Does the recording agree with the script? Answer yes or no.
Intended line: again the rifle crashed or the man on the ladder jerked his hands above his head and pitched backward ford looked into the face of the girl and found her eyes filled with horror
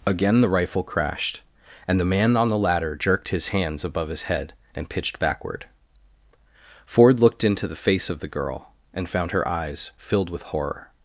no